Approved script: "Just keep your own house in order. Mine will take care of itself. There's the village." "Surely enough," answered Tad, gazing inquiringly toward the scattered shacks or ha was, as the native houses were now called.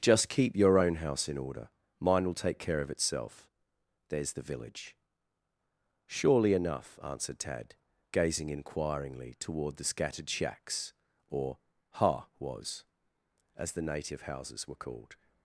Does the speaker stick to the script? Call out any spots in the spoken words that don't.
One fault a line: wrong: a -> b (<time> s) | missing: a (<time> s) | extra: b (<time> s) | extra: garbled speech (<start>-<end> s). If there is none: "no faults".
missing: now (14.8 s)